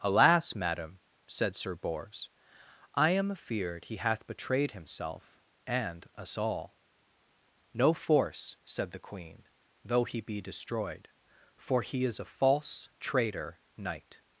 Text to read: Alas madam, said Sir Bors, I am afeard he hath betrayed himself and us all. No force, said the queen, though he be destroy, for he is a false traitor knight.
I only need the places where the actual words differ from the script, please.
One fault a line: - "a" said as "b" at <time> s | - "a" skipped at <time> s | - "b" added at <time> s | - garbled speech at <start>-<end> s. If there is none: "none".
- "destroy" said as "destroyed" at 10.4 s